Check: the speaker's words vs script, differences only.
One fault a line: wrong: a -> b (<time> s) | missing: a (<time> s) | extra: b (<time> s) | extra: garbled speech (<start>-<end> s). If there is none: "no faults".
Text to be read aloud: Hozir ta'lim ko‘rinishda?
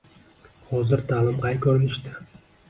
extra: qay (1.5 s)